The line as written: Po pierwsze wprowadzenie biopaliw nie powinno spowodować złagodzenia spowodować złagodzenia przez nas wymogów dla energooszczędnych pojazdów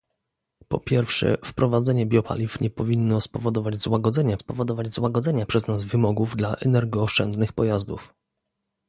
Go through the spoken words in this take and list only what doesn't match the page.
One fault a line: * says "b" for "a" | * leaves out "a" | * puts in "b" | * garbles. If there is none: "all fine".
all fine